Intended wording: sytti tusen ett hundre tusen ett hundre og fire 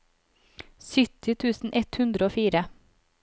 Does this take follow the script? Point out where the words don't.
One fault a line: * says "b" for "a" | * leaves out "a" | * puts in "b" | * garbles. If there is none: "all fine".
* leaves out "tusen ett hundre"